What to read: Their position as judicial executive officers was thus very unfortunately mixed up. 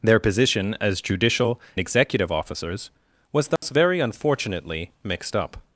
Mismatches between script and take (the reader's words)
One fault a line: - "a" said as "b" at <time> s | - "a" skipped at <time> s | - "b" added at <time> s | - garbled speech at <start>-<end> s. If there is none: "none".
none